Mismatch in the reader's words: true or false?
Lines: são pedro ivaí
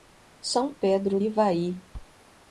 false